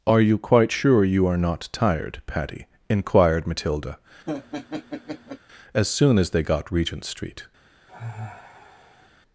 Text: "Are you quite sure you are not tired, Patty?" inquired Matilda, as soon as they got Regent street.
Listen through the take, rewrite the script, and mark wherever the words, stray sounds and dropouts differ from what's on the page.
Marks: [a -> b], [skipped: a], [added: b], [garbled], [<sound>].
"Are you quite sure you are not tired, Patty?" inquired Matilda, [laugh] as soon as they got Regent street. [sigh]